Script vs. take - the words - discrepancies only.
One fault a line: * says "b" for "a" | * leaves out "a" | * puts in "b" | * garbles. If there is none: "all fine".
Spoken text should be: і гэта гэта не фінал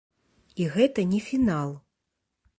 * leaves out "гэта"